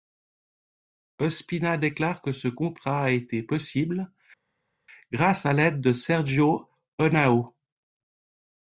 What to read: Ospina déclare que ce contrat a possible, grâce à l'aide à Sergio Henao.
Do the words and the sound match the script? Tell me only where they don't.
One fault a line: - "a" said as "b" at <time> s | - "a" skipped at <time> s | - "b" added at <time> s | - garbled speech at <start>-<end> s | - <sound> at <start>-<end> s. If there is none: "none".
- "été" added at 3.1 s
- "à" said as "de" at 5.8 s